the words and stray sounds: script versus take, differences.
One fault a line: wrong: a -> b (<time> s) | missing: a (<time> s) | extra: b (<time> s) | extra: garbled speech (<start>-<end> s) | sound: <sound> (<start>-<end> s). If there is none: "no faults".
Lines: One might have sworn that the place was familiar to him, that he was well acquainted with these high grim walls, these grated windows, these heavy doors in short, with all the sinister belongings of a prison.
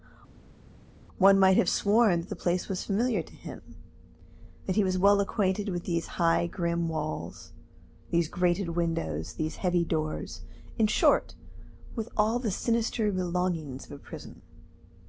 no faults